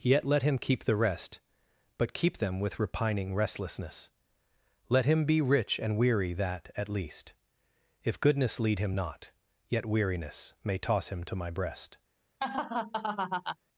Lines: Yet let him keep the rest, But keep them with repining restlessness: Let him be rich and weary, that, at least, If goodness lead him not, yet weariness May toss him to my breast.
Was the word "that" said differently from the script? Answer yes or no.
no